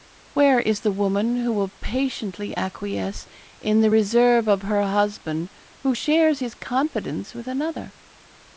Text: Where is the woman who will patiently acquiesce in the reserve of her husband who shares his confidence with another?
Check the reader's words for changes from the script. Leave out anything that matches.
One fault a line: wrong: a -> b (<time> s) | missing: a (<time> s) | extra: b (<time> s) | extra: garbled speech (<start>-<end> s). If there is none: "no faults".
no faults